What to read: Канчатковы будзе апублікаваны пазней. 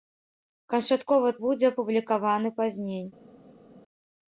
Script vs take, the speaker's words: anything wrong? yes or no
no